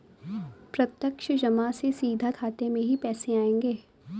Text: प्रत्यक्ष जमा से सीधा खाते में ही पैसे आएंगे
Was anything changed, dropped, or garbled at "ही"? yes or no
no